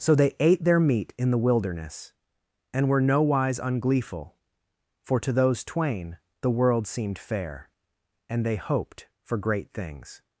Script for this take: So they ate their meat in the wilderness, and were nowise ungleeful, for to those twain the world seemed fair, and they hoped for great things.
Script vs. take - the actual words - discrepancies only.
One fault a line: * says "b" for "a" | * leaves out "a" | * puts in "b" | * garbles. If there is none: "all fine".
all fine